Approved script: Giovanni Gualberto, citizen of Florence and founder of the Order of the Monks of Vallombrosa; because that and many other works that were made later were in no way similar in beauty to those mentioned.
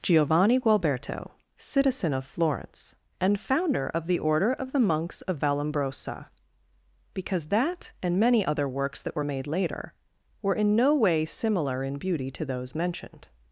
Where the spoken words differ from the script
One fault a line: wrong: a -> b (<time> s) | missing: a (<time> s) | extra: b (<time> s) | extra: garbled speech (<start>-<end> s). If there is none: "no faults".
no faults